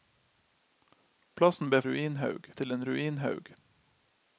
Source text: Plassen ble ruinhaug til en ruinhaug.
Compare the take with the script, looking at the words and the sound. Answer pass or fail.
pass